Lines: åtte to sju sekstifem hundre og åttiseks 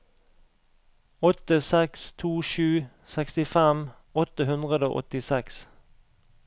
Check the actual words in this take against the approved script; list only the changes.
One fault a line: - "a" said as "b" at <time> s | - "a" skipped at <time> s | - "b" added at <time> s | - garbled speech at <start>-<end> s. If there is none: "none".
- "seks" added at 1.6 s
- "åtte" added at 4.2 s